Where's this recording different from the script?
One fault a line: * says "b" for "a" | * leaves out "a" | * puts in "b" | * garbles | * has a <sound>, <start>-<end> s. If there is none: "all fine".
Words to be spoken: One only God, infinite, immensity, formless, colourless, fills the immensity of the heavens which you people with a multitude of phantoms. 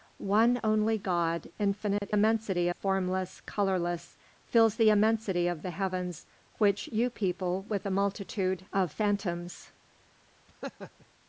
* has a dropout, 2.0-2.0 s
* has a laugh, 10.5-11.1 s